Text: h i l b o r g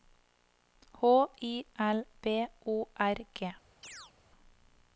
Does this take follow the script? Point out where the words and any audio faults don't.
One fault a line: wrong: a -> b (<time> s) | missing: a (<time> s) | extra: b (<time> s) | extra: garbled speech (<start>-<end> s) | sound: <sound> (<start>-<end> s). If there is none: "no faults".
sound: chirp (3.8-4.1 s)